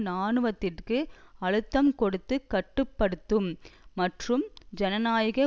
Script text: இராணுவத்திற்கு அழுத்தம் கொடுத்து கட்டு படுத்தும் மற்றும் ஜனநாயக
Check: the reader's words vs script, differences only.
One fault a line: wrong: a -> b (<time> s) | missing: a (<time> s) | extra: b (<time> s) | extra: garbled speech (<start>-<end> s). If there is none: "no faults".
no faults